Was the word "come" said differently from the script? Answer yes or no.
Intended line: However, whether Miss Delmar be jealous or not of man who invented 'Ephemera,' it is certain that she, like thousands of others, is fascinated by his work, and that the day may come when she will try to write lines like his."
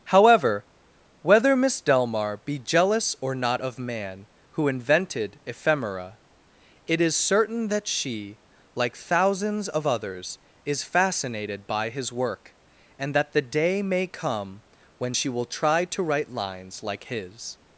no